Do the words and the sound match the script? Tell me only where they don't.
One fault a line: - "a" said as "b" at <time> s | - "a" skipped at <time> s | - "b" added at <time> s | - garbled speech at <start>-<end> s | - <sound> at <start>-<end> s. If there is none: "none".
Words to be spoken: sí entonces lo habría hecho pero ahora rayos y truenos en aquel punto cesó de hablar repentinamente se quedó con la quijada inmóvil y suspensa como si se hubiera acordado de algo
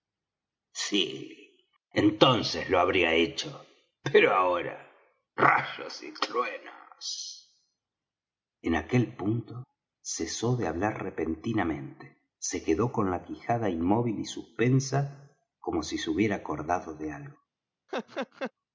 - laugh at 17.9-18.5 s